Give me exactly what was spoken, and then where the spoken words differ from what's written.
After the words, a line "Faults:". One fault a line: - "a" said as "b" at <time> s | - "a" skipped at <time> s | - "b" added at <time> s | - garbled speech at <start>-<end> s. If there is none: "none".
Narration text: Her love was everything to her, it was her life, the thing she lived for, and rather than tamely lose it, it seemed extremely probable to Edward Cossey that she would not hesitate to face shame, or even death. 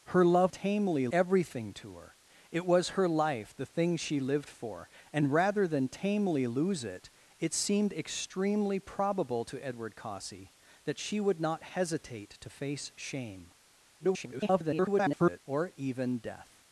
Her love tamely everything to her, it was her life, the thing she lived for, and rather than tamely lose it, it seemed extremely probable to Edward Cossey that she would not hesitate to face shame, [garbled] or even death.
Faults:
- "was" said as "tamely" at 0.5 s
- garbled speech at 14.0-15.4 s